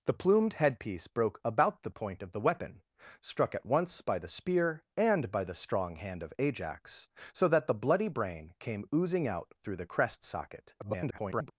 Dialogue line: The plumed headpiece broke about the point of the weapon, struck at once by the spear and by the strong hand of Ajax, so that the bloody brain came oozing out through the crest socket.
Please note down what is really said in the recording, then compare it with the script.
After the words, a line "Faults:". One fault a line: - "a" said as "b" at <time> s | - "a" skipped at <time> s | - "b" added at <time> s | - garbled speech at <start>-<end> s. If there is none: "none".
The plumed headpiece broke about the point of the weapon, struck at once by the spear and by the strong hand of Ajax, so that the bloody brain came oozing out through the crest socket. [garbled]
Faults:
- garbled speech at 10.8-11.5 s